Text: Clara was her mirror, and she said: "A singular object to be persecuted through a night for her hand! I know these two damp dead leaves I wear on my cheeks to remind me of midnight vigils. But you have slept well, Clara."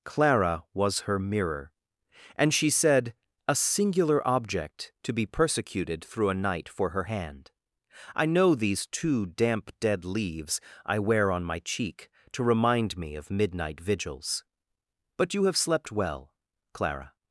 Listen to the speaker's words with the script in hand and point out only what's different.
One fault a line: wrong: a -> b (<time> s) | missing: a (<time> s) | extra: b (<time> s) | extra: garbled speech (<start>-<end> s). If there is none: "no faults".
wrong: cheeks -> cheek (11.6 s)